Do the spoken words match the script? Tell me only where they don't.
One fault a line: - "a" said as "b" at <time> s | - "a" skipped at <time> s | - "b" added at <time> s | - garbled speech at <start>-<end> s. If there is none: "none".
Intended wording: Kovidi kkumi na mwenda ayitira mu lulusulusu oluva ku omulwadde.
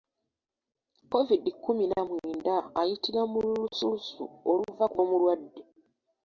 none